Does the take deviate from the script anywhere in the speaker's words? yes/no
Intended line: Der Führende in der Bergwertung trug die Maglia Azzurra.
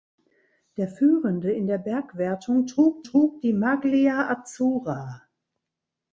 yes